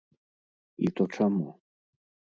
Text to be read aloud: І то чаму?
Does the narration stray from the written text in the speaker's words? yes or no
no